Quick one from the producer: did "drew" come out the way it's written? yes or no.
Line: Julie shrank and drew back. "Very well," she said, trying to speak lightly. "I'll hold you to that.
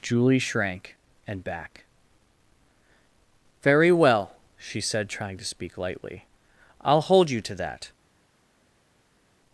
no